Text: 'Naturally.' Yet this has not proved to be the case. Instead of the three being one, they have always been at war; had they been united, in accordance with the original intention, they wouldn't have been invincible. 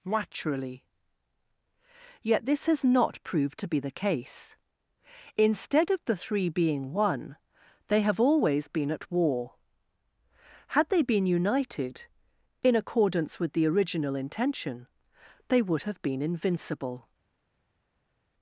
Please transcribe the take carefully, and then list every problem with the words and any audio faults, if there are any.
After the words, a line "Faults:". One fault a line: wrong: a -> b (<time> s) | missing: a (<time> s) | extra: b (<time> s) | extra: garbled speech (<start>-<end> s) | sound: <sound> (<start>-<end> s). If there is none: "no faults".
'Naturally.' Yet this has not proved to be the case. Instead of the three being one, they have always been at war; had they been united, in accordance with the original intention, they would have been invincible.
Faults:
wrong: wouldn't -> would (15.6 s)